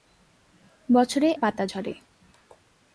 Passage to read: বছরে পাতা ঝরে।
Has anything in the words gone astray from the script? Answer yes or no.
no